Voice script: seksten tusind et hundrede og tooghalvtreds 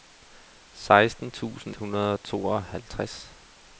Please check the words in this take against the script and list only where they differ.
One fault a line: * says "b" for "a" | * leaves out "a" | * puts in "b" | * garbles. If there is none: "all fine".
* leaves out "et"